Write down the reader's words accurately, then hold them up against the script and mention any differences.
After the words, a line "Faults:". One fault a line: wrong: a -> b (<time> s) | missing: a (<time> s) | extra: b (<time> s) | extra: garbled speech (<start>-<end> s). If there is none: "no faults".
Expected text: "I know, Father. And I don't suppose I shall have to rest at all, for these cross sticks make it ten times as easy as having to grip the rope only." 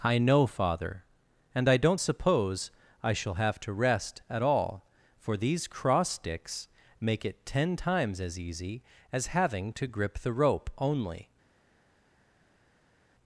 "I know, Father. And I don't suppose I shall have to rest at all, for these cross sticks make it ten times as easy as having to grip the rope only."
Faults:
no faults